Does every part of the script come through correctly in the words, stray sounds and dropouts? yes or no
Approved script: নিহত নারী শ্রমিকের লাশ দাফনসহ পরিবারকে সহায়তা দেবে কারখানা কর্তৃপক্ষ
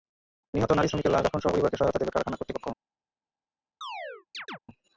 no